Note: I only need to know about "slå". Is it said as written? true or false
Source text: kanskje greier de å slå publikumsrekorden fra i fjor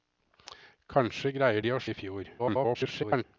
false